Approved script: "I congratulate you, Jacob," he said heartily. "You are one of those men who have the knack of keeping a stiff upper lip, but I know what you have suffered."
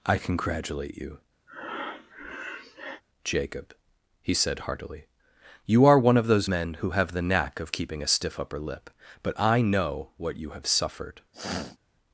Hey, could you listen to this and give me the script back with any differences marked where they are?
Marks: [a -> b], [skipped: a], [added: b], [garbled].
"I congratulate you, Jacob," he said heartily. "You are one of those men who have the knack of keeping a stiff upper lip, but I know what you have suffered."